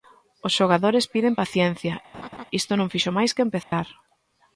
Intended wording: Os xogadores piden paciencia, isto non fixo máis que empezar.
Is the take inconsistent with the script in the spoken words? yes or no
no